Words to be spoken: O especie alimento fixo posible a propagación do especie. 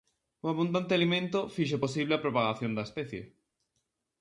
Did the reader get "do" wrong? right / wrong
wrong